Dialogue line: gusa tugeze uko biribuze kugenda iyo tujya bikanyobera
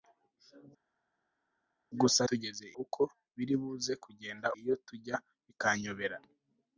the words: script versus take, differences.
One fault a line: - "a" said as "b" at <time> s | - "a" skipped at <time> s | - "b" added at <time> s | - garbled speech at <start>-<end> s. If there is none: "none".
none